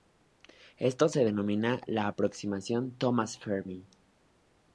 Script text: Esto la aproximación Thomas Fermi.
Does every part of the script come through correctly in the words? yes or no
no